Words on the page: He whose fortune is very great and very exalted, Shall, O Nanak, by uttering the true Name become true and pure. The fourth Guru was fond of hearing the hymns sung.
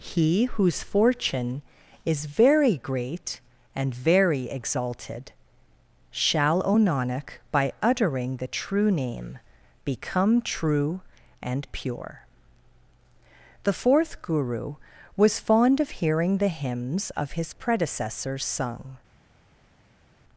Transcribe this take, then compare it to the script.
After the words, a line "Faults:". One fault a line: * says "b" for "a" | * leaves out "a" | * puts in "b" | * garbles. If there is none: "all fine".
He whose fortune is very great and very exalted, Shall, O Nanak, by uttering the true Name become true and pure. The fourth Guru was fond of hearing the hymns of his predecessors sung.
Faults:
* puts in "of his predecessors"